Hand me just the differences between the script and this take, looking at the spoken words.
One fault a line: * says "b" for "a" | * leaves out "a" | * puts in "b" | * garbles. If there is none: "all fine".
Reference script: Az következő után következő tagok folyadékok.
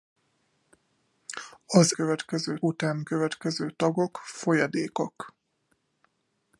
all fine